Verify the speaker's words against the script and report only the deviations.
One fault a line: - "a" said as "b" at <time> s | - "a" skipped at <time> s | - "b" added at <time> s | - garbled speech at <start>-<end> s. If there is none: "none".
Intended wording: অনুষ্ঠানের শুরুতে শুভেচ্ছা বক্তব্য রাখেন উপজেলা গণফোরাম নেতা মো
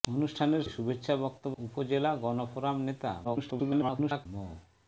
- "শুরুতে" skipped at 0.6 s
- "রাখেন" skipped at 1.6 s
- garbled speech at 3.2-4.3 s